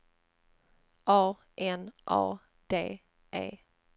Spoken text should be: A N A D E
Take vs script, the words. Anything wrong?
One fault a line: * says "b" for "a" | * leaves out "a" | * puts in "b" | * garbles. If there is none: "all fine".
all fine